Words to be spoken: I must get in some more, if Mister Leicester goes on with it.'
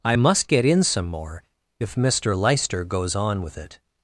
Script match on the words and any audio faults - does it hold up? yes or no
yes